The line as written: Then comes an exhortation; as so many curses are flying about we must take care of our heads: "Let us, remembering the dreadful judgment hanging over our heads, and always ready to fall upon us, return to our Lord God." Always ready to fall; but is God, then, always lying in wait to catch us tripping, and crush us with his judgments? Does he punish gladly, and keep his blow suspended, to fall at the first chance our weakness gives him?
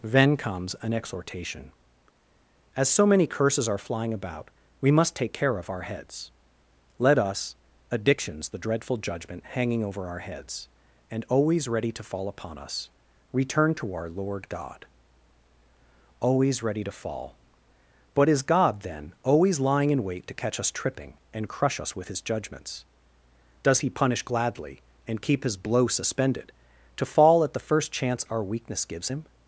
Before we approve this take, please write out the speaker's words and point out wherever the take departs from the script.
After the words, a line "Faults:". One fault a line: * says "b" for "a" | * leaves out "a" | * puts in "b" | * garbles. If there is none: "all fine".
Then comes an exhortation; as so many curses are flying about we must take care of our heads: "Let us, addictions the dreadful judgment hanging over our heads, and always ready to fall upon us, return to our Lord God." Always ready to fall; but is God, then, always lying in wait to catch us tripping, and crush us with his judgments? Does he punish gladly, and keep his blow suspended, to fall at the first chance our weakness gives him?
Faults:
* says "addictions" for "remembering"